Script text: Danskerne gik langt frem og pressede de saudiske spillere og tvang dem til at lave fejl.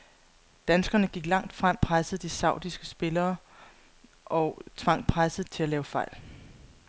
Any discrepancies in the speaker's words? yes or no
yes